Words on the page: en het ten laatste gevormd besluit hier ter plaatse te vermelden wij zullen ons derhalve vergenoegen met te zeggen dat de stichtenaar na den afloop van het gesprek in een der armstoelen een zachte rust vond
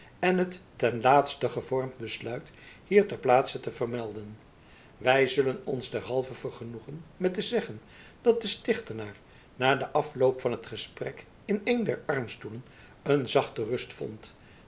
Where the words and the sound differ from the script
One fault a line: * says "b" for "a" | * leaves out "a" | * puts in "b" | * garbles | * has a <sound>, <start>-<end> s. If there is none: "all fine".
all fine